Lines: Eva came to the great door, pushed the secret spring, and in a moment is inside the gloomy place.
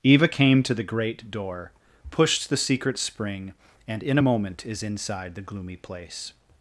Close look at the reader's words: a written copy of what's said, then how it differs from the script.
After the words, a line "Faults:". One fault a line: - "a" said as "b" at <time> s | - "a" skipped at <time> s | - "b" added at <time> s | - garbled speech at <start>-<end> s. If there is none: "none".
Eva came to the great door, pushed the secret spring, and in a moment is inside the gloomy place.
Faults:
none